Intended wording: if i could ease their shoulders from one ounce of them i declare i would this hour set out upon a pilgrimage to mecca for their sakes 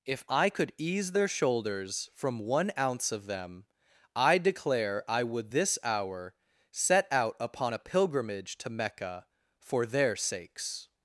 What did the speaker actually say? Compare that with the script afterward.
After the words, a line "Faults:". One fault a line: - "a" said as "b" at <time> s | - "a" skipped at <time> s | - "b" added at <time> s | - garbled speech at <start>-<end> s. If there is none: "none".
if i could ease their shoulders from one ounce of them i declare i would this hour set out upon a pilgrimage to mecca for their sakes
Faults:
none